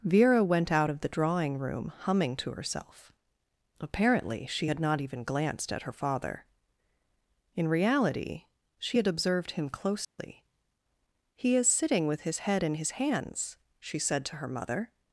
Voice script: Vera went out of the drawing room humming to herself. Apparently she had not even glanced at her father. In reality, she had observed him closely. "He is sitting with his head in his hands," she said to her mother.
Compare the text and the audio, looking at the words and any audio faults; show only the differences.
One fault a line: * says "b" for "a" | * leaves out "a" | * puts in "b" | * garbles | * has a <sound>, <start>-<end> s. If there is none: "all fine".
* has a dropout, 10.0-10.2 s